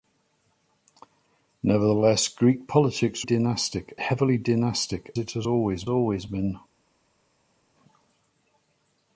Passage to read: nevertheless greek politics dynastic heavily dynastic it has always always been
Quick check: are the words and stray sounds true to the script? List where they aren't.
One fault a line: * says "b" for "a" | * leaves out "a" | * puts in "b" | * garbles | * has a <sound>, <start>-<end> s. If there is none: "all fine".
all fine